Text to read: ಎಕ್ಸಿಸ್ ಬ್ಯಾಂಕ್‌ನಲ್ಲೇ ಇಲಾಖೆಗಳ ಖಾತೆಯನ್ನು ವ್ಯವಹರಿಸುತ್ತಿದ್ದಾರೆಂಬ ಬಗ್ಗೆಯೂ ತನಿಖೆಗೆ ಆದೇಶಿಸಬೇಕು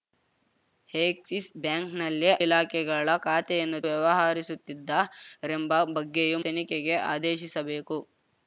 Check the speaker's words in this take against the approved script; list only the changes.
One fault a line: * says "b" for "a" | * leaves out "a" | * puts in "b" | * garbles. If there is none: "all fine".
all fine